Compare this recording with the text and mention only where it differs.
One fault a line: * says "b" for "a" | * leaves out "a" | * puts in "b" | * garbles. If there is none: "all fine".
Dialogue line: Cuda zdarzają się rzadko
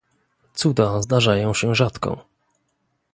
all fine